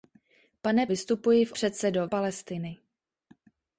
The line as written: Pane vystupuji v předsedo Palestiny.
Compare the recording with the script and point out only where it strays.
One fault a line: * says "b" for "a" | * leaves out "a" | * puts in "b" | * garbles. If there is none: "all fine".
all fine